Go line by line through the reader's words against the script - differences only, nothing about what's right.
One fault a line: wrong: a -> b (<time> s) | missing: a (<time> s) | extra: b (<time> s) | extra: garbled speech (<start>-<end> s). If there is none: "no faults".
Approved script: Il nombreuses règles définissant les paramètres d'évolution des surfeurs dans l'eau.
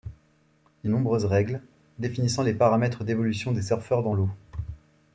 no faults